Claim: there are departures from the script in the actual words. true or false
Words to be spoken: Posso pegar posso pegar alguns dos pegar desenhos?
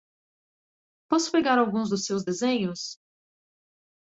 true